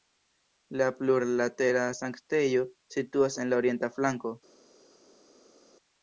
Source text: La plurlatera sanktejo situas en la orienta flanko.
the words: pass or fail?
pass